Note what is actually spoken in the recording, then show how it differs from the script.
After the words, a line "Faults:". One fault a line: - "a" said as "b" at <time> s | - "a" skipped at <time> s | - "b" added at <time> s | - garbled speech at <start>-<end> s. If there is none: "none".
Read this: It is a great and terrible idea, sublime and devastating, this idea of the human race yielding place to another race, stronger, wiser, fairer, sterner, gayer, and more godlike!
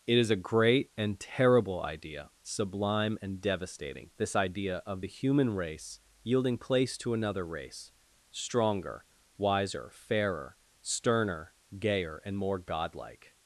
It is a great and terrible idea, sublime and devastating, this idea of the human race yielding place to another race, stronger, wiser, fairer, sterner, gayer, and more godlike!
Faults:
none